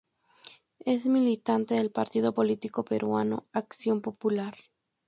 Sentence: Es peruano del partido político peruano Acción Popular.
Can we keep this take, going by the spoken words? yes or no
no